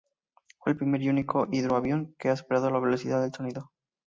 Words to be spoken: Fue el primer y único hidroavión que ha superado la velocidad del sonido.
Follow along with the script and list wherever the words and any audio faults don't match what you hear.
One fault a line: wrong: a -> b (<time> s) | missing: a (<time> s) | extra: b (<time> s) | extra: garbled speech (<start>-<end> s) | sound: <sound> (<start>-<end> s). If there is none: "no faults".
no faults